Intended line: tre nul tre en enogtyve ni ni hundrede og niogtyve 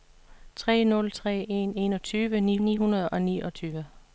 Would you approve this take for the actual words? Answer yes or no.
yes